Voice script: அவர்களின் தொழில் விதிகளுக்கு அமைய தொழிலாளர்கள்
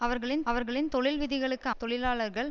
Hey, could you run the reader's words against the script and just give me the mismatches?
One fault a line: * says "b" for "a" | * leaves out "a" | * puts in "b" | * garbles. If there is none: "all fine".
* puts in "அவர்களின்"
* leaves out "அமைய"